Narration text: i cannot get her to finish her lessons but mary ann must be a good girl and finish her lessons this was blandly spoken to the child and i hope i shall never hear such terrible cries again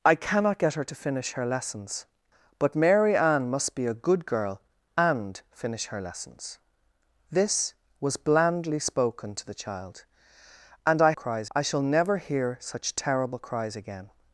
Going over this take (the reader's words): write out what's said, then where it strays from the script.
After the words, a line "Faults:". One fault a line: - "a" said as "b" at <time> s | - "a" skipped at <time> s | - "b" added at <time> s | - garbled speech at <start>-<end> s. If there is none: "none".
i cannot get her to finish her lessons but mary ann must be a good girl and finish her lessons this was blandly spoken to the child and i cries i shall never hear such terrible cries again
Faults:
- "hope" said as "cries" at 11.1 s